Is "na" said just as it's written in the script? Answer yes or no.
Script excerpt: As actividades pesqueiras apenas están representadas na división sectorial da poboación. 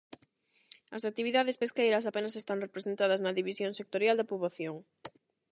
yes